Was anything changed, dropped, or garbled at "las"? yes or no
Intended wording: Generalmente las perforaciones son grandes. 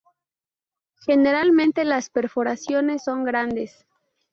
no